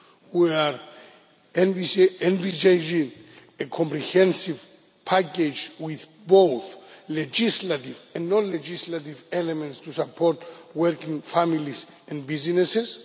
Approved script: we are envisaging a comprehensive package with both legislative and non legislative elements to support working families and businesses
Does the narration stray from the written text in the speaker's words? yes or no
no